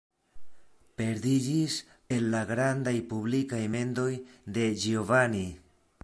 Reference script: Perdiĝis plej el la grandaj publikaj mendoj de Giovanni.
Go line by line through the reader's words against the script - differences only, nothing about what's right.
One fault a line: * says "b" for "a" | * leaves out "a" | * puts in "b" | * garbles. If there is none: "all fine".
* leaves out "plej"